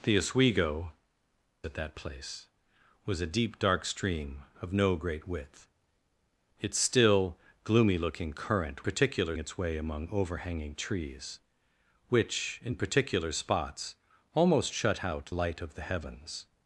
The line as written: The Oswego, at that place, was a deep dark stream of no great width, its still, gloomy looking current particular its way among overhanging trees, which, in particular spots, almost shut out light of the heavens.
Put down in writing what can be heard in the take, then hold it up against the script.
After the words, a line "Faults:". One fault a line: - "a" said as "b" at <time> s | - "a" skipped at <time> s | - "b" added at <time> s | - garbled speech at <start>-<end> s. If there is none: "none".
The Oswego, at that place, was a deep dark stream of no great width, its still, gloomy looking current particular its way among overhanging trees, which, in particular spots, almost shut out light of the heavens.
Faults:
none